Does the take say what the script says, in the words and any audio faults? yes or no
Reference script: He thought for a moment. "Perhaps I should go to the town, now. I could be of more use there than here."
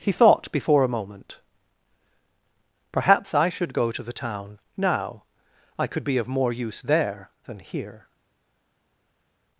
no